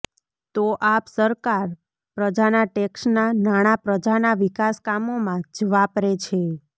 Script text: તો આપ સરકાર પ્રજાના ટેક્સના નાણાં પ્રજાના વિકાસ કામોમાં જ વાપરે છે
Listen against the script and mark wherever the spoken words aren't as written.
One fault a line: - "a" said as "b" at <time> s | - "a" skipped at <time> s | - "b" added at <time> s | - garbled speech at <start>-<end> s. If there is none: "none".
none